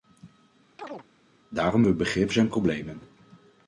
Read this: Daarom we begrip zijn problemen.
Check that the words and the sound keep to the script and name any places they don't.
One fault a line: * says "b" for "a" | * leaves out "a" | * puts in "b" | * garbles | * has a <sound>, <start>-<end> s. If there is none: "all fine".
* has a chirp, 0.8-1.1 s